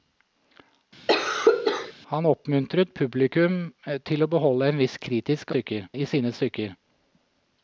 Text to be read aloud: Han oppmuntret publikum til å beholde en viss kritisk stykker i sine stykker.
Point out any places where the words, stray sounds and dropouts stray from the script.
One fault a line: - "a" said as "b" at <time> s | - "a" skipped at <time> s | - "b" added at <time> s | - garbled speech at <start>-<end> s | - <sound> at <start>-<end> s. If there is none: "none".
- cough at 1.1-1.9 s